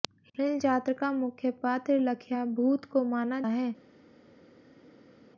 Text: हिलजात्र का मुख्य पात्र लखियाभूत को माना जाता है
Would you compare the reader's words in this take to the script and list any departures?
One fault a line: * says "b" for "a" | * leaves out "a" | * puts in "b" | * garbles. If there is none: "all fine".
* leaves out "जाता"